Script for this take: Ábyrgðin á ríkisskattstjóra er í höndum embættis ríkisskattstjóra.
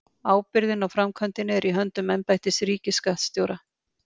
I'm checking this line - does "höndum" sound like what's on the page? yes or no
yes